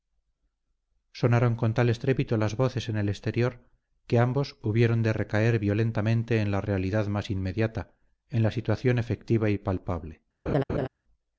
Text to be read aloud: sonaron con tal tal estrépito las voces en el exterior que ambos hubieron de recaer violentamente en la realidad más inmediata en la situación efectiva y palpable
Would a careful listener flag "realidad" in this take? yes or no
no